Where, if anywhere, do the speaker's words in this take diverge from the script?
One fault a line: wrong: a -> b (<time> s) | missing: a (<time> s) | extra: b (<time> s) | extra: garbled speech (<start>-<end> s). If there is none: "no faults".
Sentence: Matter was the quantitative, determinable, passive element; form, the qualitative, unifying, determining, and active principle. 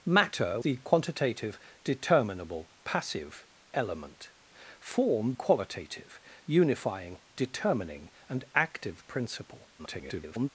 missing: was (0.6 s)
missing: the (5.3 s)
extra: garbled speech (9.8-10.5 s)